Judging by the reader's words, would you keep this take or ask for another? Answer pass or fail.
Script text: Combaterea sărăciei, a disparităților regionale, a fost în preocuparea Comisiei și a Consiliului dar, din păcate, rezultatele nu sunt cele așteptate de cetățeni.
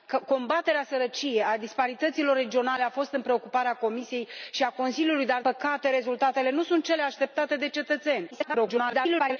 fail